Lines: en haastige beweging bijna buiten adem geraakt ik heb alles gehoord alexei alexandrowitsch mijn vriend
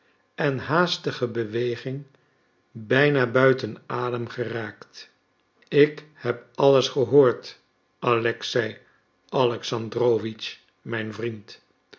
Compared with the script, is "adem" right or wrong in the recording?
right